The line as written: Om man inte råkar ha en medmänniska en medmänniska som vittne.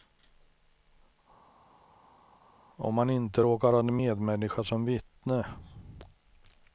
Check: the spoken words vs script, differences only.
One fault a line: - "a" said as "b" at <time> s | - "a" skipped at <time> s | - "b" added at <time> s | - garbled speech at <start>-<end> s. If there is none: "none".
- "en medmänniska" skipped at 4.6 s